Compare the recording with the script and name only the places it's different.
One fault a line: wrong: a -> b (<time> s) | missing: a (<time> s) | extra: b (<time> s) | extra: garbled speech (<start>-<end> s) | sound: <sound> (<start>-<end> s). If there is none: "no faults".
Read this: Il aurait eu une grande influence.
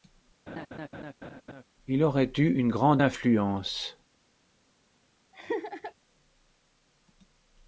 sound: laugh (0.5-1.6 s)
sound: laugh (5.3-5.9 s)